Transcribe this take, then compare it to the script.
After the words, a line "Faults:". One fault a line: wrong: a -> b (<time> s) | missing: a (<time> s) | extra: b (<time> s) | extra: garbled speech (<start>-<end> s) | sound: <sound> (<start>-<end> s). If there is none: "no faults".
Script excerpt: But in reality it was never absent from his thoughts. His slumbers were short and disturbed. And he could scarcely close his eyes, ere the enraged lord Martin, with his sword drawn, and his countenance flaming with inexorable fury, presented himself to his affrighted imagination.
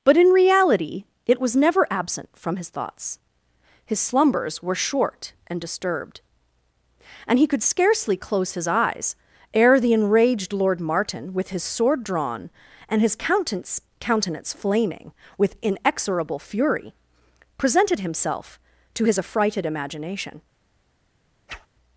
But in reality it was never absent from his thoughts. His slumbers were short and disturbed. And he could scarcely close his eyes, ere the enraged lord Martin, with his sword drawn, and his countenance countenance flaming with inexorable fury, presented himself to his affrighted imagination.
Faults:
extra: countenance (14.0 s)
sound: whoosh (21.5-21.7 s)